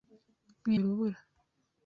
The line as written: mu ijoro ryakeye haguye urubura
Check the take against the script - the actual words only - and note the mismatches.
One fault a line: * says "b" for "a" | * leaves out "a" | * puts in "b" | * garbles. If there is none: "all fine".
* leaves out "ijoro ryakeye haguye"